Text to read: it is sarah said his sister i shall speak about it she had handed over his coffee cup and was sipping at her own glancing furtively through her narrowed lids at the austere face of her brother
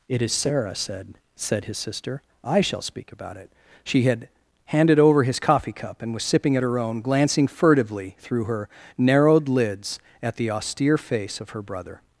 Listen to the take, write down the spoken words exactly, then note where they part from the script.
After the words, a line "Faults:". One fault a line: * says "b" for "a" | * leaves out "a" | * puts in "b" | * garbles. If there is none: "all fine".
it is sarah said said his sister i shall speak about it she had handed over his coffee cup and was sipping at her own glancing furtively through her narrowed lids at the austere face of her brother
Faults:
* puts in "said"